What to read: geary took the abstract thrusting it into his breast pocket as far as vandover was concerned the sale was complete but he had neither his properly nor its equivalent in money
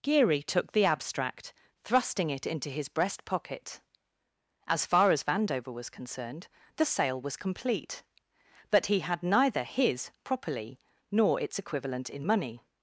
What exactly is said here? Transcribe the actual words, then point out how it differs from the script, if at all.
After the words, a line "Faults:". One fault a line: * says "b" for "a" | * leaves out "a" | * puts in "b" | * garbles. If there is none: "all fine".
geary took the abstract thrusting it into his breast pocket as far as vandover was concerned the sale was complete but he had neither his properly nor its equivalent in money
Faults:
all fine